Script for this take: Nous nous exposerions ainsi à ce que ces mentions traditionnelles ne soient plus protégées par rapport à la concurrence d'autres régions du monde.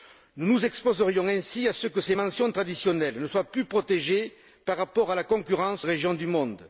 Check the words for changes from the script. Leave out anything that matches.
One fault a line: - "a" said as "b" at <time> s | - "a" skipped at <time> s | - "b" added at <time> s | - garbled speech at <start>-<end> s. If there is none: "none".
- "d'autres" skipped at 5.9 s